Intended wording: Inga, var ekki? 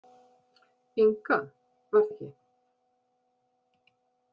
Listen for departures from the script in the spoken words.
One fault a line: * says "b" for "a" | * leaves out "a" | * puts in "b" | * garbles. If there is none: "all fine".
all fine